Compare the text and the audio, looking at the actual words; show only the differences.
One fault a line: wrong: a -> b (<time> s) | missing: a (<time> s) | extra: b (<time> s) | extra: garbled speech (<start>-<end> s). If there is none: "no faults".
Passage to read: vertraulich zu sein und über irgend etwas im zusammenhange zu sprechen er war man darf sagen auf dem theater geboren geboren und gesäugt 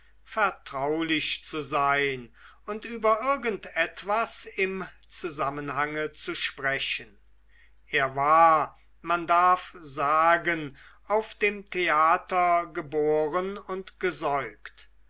missing: geboren (13.6 s)